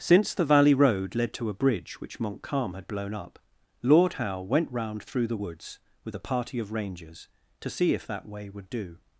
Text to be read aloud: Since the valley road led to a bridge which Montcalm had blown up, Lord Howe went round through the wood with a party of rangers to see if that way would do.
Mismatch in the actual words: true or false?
true